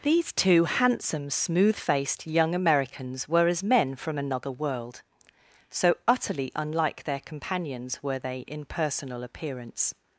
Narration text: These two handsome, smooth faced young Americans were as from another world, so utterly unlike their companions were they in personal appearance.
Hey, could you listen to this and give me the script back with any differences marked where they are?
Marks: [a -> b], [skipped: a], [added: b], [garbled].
These two handsome, smooth faced young Americans were as [added: men] from another world, so utterly unlike their companions were they in personal appearance.